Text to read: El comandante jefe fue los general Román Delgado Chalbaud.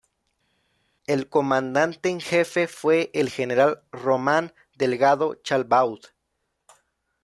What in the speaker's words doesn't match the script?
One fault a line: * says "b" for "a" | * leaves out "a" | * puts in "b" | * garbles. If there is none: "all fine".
* puts in "en"
* says "el" for "los"